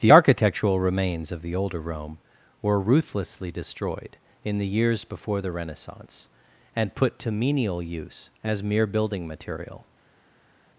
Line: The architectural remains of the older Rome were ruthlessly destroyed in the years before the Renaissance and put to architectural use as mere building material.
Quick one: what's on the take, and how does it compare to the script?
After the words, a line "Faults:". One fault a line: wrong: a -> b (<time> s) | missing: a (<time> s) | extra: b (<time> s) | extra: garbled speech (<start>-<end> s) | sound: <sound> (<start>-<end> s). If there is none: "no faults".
The architectural remains of the older Rome were ruthlessly destroyed in the years before the Renaissance and put to menial use as mere building material.
Faults:
wrong: architectural -> menial (7.3 s)